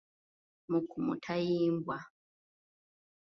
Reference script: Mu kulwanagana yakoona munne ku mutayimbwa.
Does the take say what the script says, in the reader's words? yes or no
no